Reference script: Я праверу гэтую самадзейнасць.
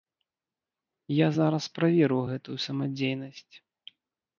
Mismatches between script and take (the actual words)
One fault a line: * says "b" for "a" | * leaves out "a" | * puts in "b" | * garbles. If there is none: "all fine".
* puts in "зараз"